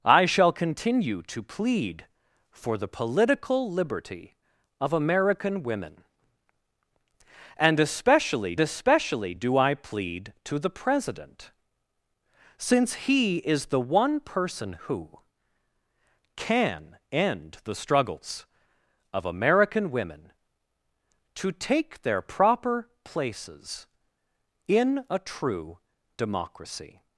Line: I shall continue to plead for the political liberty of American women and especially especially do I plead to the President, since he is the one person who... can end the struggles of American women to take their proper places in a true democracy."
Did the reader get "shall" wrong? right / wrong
right